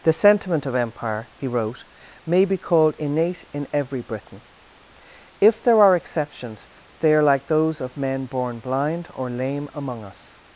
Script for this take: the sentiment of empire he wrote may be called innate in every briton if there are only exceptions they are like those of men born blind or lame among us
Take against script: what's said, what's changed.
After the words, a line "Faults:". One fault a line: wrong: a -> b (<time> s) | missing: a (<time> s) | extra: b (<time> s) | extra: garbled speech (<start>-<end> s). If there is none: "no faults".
the sentiment of empire he wrote may be called innate in every briton if there are exceptions they are like those of men born blind or lame among us
Faults:
missing: only (6.0 s)